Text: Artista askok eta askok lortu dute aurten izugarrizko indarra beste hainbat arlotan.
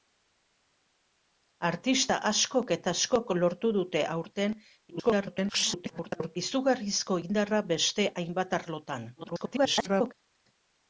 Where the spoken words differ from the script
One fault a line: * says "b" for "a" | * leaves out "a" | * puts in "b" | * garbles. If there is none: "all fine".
* garbles
* garbles